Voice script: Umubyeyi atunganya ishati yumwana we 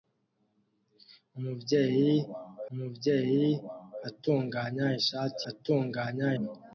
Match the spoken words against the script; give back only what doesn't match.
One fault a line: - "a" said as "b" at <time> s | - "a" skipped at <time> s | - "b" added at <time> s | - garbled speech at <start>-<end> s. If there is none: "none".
- "umubyeyi" added at 2.7 s
- "yumwana" said as "atunganya" at 5.5 s